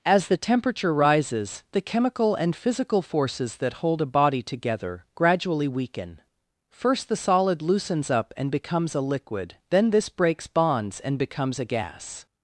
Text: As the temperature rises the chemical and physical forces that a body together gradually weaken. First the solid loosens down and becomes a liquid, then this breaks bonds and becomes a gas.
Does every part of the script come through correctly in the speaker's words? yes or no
no